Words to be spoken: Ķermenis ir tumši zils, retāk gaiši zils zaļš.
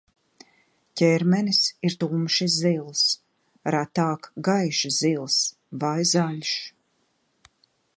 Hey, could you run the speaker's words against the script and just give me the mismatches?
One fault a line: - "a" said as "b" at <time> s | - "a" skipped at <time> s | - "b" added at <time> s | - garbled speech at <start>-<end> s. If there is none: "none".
- "vai" added at 5.9 s